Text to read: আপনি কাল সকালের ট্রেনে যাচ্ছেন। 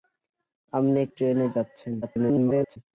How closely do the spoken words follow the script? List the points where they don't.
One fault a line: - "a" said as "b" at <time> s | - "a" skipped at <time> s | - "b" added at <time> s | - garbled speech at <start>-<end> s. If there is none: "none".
- "কাল সকালের" skipped at 1.0 s
- garbled speech at 2.0-2.8 s